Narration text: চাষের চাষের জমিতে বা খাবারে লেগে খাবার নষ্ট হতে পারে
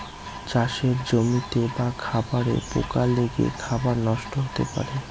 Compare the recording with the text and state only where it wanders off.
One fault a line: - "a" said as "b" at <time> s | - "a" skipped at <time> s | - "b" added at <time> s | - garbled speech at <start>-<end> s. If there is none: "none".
- "চাষের" skipped at 0.9 s
- "পোকা" added at 2.7 s